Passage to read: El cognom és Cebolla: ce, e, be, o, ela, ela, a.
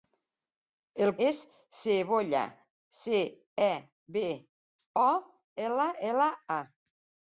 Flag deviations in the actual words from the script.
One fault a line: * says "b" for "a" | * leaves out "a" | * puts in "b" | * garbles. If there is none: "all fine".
* leaves out "cognom"